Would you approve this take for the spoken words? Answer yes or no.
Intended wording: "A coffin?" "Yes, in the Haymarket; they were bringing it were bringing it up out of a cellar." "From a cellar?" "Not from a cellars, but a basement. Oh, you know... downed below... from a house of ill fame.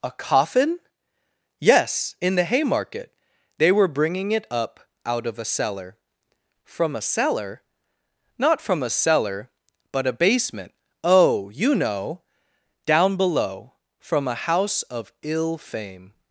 no